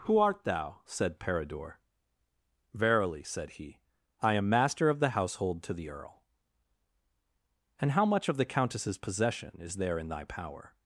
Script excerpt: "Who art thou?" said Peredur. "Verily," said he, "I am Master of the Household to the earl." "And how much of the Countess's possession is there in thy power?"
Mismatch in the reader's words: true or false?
false